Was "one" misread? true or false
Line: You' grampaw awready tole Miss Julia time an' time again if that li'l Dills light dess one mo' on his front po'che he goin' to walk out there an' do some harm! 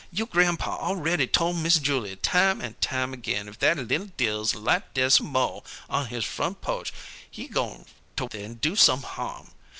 true